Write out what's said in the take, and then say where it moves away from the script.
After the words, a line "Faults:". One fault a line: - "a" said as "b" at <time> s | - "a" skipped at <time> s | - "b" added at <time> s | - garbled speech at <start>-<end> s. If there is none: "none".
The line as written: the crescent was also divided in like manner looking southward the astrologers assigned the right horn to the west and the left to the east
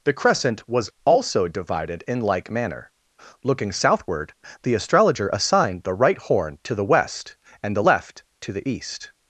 the crescent was also divided in like manner looking southward the astrologer assigned the right horn to the west and the left to the east
Faults:
- "astrologers" said as "astrologer" at 4.7 s